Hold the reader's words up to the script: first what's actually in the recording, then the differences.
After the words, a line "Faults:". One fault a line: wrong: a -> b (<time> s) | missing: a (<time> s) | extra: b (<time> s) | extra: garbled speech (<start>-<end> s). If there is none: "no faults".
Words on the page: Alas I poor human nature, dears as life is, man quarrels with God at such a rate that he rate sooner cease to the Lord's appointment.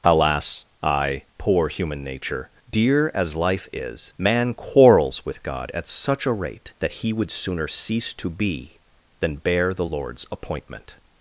Alas I poor human nature, dear as life is, man quarrels with God at such a rate that he would sooner cease to be than bear the Lord's appointment.
Faults:
wrong: dears -> dear (2.7 s)
wrong: rate -> would (7.1 s)
extra: be than bear (8.3 s)